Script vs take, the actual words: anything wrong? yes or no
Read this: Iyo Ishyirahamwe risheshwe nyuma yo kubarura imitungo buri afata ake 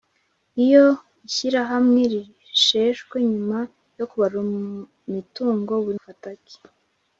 no